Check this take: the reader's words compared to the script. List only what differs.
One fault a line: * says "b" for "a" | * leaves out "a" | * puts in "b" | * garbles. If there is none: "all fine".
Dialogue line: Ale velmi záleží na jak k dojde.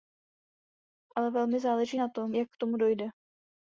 * puts in "tom"
* puts in "tomu"